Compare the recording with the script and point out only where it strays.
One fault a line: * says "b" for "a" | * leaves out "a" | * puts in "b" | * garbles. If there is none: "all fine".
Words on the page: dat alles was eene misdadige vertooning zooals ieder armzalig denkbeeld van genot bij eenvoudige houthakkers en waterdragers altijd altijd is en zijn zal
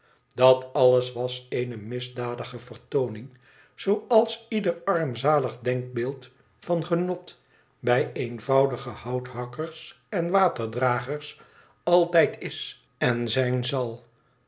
* leaves out "altijd"